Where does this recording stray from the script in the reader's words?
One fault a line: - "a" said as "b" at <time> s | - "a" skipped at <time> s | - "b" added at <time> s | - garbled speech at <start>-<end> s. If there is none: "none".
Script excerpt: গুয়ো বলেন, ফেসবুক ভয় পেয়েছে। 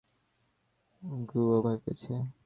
- "বলেন ফেসবুক" skipped at 1.6 s